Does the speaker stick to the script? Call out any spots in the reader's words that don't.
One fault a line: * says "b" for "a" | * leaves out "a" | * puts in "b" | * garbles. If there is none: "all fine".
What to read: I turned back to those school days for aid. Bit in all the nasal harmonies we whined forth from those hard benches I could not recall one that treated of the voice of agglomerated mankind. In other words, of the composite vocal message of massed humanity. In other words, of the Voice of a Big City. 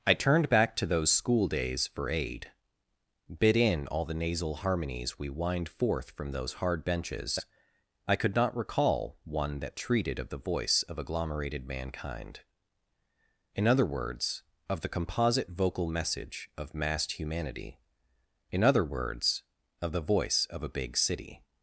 all fine